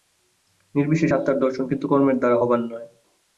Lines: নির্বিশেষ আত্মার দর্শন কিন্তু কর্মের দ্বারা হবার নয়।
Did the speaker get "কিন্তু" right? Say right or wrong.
right